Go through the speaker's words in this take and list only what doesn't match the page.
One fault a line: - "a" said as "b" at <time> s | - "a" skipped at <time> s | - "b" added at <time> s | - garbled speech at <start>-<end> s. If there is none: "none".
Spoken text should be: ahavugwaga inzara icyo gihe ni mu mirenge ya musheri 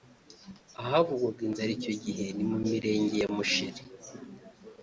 none